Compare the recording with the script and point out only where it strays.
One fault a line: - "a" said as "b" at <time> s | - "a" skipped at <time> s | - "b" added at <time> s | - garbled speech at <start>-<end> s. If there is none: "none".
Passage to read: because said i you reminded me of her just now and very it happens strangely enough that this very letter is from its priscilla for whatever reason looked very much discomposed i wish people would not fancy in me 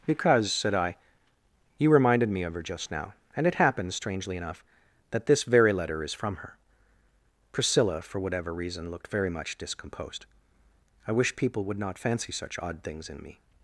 - "very" skipped at 3.5 s
- "its" said as "her" at 6.4 s
- "such odd things" added at 12.3 s